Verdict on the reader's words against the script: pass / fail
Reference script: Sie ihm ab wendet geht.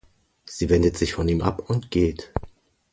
fail